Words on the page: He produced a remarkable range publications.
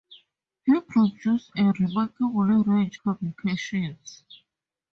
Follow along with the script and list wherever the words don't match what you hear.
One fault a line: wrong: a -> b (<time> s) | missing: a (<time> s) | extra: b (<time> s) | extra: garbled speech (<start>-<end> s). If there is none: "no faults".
no faults